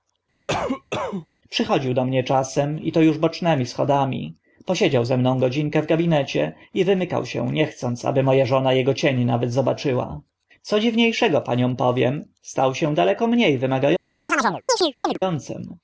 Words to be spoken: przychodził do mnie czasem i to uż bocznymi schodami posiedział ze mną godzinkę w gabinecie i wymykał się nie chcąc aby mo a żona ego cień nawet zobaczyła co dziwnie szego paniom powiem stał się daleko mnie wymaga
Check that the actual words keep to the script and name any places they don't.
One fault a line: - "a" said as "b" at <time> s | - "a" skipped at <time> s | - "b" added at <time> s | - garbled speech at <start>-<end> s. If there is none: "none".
none